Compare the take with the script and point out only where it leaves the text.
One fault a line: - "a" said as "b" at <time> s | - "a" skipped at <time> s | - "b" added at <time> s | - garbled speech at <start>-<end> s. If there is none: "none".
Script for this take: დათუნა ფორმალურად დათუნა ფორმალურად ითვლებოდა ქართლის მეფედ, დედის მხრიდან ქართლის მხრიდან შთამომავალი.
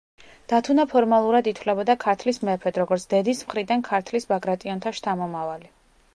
- "დათუნა ფორმალურად" skipped at 1.5 s
- "როგორც" added at 2.9 s
- "მხრიდან" said as "ბაგრატიონთა" at 4.3 s